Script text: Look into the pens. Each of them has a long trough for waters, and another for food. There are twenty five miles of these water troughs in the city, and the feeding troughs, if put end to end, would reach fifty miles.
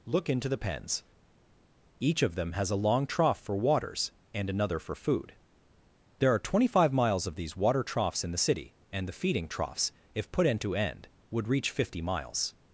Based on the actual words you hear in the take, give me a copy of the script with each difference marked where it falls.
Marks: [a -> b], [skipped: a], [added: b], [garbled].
Look into the pens. Each of them has a long trough for waters, and another for food. There are twenty five miles of these water troughs in the city, and the feeding troughs, if put end to end, would reach fifty miles.